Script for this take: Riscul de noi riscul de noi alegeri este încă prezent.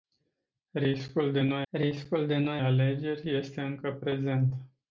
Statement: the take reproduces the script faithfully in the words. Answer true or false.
true